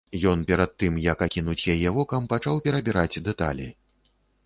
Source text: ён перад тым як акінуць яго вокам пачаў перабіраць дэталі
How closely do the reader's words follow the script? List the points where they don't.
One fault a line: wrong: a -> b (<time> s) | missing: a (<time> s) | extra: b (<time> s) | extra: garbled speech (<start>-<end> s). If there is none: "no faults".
wrong: яго -> яе (1.7 s)